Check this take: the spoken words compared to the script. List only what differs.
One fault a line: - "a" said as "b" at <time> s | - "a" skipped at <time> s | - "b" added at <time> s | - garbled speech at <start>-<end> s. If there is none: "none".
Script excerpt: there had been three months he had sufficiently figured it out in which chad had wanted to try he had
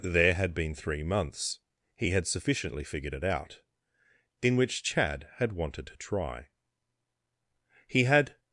none